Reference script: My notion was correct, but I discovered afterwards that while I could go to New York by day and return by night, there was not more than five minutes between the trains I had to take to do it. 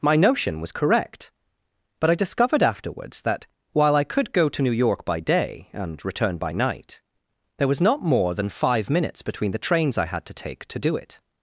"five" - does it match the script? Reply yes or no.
yes